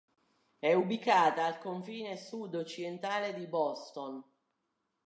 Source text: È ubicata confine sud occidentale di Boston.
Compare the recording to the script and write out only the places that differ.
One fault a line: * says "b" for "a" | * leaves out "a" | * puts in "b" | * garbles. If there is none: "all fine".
* puts in "al"